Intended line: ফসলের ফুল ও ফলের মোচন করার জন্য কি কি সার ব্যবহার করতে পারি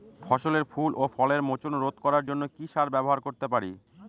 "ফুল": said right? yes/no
yes